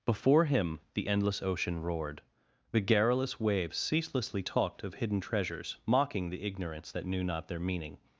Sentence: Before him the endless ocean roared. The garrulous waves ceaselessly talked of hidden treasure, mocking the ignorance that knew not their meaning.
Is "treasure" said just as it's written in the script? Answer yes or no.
no